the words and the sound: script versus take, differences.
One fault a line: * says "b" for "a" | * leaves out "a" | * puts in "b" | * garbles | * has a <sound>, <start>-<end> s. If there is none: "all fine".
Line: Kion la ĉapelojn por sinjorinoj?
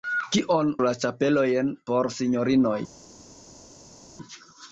all fine